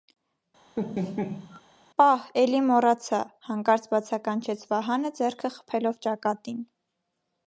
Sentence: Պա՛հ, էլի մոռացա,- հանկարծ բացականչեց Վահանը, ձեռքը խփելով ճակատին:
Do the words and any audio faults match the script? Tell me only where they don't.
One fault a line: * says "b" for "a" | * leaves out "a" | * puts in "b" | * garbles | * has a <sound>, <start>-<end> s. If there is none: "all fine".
* has a laugh, 0.8-1.6 s